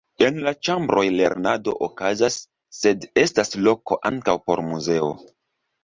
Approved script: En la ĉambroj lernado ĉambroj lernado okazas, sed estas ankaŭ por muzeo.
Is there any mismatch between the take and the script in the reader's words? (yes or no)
yes